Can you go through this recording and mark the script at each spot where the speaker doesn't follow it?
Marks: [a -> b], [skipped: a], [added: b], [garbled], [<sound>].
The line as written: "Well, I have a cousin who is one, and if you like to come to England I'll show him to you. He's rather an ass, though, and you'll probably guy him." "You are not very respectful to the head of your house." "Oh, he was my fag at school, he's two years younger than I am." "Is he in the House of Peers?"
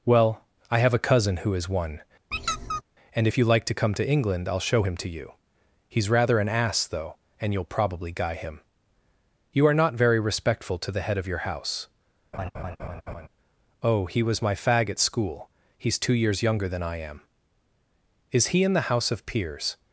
"Well, I have a cousin who is one, [squeak] and if you like to come to England I'll show him to you. He's rather an ass, though, and you'll probably guy him." "You are not very respectful to the head of your house." [laugh] "Oh, he was my fag at school, he's two years younger than I am." "Is he in the House of Peers?"